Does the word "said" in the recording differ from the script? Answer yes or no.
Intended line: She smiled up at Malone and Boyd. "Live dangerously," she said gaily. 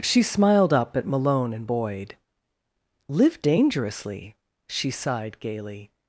yes